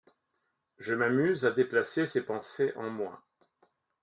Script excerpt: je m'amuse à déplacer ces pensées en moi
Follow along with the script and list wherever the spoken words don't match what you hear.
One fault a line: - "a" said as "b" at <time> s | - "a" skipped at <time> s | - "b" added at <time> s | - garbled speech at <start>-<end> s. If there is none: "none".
none